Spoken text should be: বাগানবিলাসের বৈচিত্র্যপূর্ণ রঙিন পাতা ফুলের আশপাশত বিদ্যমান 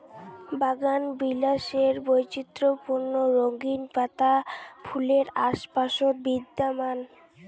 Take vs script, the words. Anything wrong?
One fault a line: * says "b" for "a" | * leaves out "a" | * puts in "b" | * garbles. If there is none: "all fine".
all fine